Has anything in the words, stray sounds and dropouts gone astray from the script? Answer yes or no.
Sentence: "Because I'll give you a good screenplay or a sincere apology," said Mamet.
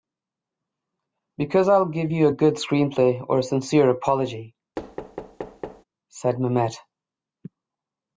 yes